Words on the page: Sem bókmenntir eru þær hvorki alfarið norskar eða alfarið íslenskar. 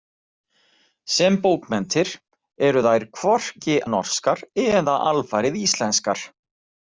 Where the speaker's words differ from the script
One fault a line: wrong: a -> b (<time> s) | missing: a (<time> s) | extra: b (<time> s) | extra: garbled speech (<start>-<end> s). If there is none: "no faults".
missing: alfarið (3.8 s)